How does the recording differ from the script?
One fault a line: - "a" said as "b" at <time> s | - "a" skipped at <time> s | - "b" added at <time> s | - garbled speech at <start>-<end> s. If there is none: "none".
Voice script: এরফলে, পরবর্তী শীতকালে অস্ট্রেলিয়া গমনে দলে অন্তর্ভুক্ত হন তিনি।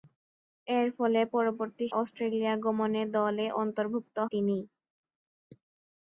- "শীতকালে" skipped at 1.9 s
- "হন" skipped at 4.2 s